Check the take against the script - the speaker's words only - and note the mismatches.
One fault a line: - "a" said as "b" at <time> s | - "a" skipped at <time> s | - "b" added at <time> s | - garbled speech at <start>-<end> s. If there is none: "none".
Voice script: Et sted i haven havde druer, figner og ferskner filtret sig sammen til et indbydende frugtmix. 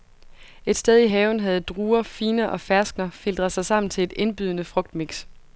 none